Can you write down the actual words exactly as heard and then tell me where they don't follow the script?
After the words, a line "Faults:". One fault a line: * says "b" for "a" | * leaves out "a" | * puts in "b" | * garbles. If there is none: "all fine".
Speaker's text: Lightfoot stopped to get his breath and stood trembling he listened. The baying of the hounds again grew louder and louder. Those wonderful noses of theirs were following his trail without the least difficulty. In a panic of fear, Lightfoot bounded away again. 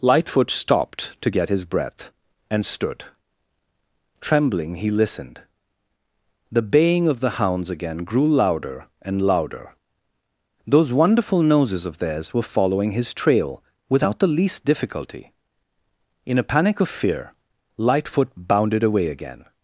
Lightfoot stopped to get his breath and stood trembling he listened. The baying of the hounds again grew louder and louder. Those wonderful noses of theirs were following his trail without the least difficulty. In a panic of fear, Lightfoot bounded away again.
Faults:
all fine